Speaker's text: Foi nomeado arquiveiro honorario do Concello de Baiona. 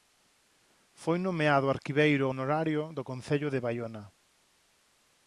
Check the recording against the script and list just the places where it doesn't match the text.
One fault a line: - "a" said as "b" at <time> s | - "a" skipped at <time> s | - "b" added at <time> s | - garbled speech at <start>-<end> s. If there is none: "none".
none